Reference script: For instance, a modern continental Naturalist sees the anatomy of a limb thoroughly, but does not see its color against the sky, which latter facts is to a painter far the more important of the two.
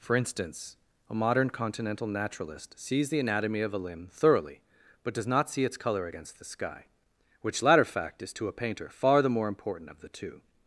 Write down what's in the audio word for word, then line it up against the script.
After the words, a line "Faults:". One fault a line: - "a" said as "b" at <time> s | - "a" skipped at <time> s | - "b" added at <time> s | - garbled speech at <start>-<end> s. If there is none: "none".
For instance, a modern continental Naturalist sees the anatomy of a limb thoroughly, but does not see its color against the sky, which latter fact is to a painter far the more important of the two.
Faults:
- "facts" said as "fact" at 7.8 s